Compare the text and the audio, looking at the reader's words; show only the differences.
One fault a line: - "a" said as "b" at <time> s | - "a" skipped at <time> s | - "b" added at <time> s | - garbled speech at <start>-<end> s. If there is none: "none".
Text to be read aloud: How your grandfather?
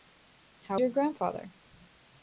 none